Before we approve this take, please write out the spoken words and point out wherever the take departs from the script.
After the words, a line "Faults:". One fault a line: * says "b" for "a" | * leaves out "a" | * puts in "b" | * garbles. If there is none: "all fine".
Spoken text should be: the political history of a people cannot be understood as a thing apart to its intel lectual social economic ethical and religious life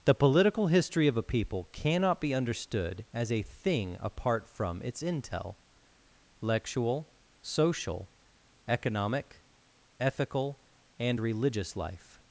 the political history of a people cannot be understood as a thing apart from its intel lectual social economic ethical and religious life
Faults:
* says "from" for "to"